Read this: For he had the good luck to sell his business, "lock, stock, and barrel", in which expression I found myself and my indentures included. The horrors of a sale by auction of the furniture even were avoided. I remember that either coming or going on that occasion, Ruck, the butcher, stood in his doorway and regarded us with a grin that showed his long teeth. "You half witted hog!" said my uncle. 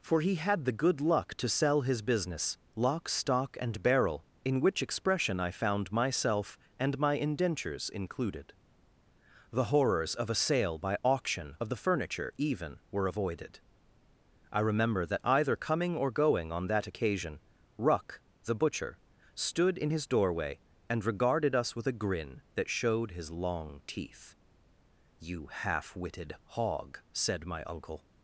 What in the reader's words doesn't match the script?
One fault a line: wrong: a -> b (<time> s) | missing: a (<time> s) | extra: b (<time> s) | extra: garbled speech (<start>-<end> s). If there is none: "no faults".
no faults